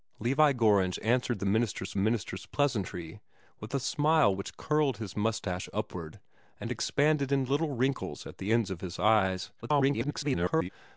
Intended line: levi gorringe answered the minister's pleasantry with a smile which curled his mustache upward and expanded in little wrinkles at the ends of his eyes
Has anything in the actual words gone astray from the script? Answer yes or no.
yes